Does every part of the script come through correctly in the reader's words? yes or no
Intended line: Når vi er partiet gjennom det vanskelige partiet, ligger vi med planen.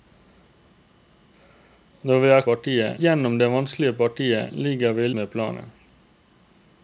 yes